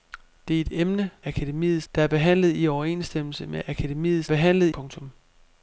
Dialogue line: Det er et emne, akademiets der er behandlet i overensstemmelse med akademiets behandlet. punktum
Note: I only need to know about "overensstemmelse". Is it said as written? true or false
true